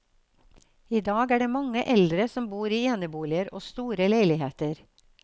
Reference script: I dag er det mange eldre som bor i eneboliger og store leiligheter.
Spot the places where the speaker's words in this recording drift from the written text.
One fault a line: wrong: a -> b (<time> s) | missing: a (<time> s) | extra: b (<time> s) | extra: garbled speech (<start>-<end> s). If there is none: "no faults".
no faults